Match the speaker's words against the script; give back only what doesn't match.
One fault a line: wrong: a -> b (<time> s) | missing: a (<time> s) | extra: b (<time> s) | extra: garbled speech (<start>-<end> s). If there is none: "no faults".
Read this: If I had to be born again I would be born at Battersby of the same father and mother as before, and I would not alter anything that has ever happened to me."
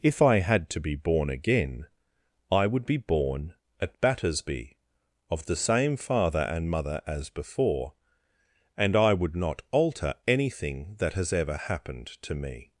no faults